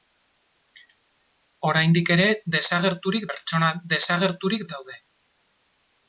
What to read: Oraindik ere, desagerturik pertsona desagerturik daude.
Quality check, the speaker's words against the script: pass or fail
pass